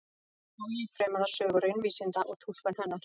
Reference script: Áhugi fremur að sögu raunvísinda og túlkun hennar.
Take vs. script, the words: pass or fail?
pass